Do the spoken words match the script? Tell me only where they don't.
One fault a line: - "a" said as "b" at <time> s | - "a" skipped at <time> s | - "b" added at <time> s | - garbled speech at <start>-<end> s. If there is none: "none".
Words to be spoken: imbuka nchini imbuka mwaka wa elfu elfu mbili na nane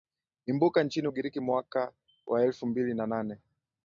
- "imbuka" said as "ugiriki" at 1.0 s
- "elfu" skipped at 2.7 s